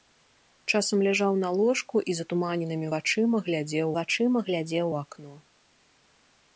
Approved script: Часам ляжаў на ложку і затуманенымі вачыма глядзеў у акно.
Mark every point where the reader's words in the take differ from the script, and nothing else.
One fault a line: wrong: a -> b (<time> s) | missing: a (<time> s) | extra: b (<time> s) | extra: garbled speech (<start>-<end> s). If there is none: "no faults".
extra: вачыма глядзеў (4.0 s)